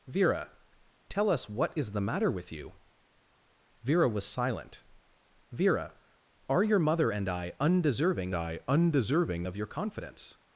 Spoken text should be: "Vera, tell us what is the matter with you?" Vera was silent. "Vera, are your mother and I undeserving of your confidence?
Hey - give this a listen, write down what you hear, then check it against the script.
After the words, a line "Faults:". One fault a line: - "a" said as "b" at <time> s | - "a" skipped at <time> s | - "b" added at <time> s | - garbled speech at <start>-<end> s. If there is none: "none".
"Vera, tell us what is the matter with you?" Vera was silent. "Vera, are your mother and I undeserving I undeserving of your confidence?
Faults:
- "I undeserving" added at 8.3 s